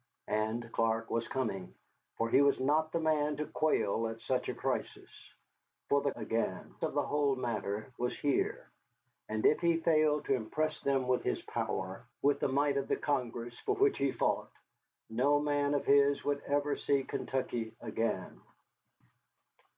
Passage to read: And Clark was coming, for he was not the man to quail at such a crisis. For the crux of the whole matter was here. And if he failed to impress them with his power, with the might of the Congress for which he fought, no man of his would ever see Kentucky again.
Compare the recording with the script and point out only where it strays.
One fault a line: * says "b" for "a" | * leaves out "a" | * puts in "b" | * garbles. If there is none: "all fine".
* says "again" for "crux"